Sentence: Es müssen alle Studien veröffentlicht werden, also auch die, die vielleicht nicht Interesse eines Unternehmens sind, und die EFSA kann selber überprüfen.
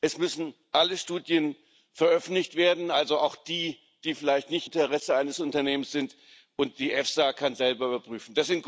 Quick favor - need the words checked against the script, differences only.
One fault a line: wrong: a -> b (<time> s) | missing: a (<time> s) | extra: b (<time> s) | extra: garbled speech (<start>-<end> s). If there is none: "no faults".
no faults